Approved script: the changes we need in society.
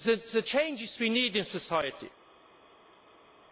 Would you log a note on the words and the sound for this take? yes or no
no